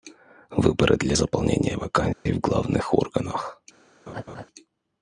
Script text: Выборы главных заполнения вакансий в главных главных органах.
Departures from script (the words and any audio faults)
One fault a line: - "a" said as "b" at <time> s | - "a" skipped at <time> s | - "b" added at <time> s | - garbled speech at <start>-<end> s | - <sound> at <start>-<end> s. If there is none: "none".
- "главных" said as "для" at 1.0 s
- dropout at 2.1-2.3 s
- "главных" skipped at 2.9 s
- laugh at 4.1-4.5 s